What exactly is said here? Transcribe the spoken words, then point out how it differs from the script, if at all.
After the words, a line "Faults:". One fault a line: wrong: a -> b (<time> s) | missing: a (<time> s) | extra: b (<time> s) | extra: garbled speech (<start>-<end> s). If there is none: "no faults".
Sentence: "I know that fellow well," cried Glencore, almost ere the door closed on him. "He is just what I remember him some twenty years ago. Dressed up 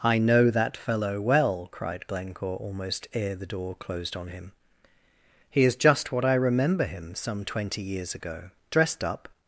"I know that fellow well," cried Glencore, almost ere the door closed on him. "He is just what I remember him some twenty years ago. Dressed up
Faults:
no faults